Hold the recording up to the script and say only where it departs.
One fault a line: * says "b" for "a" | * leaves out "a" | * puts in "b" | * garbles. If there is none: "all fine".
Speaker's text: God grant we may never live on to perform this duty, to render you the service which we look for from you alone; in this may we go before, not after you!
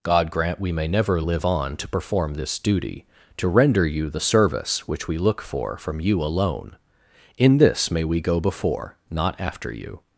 all fine